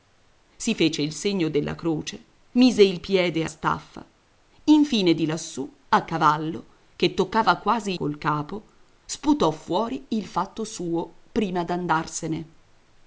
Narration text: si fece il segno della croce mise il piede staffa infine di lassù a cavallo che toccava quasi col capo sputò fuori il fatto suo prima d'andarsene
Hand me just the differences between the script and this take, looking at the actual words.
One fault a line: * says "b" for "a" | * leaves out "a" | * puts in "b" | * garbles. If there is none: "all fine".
all fine